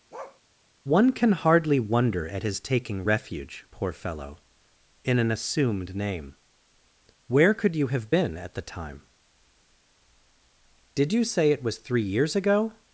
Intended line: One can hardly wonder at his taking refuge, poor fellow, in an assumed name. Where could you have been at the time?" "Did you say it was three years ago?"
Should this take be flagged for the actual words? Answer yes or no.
no